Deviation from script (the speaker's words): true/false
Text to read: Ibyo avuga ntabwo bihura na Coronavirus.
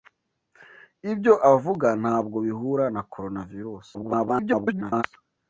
true